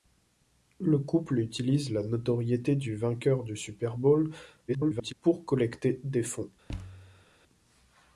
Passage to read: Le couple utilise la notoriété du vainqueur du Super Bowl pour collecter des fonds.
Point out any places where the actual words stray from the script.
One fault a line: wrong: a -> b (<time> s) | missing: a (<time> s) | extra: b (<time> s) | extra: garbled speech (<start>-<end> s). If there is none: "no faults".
extra: garbled speech (4.7-5.1 s)